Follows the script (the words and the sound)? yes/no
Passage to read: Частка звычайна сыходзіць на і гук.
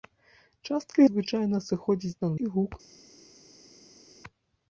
yes